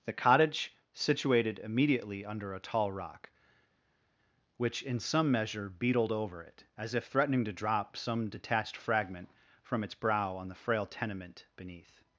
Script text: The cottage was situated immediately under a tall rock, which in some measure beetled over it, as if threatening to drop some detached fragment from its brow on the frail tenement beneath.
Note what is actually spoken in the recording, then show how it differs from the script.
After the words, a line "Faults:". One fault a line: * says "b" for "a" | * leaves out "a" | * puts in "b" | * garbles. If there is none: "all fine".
The cottage situated immediately under a tall rock, which in some measure beetled over it, as if threatening to drop some detached fragment from its brow on the frail tenement beneath.
Faults:
* leaves out "was"